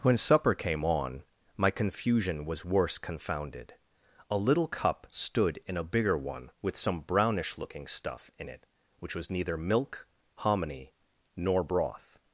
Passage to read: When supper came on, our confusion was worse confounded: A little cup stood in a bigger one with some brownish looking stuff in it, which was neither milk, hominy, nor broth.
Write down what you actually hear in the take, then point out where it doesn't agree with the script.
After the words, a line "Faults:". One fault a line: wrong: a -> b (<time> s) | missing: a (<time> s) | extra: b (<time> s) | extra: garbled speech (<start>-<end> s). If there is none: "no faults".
When supper came on, my confusion was worse confounded: A little cup stood in a bigger one with some brownish looking stuff in it, which was neither milk, hominy, nor broth.
Faults:
wrong: our -> my (1.6 s)